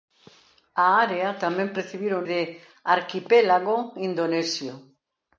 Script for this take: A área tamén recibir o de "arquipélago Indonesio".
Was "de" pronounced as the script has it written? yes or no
yes